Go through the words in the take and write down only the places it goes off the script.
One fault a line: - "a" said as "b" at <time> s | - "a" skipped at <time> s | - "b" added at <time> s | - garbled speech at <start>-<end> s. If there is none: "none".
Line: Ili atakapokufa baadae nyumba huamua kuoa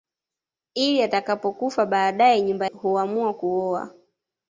none